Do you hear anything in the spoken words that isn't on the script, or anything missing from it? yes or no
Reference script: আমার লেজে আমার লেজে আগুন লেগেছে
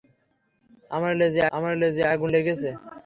no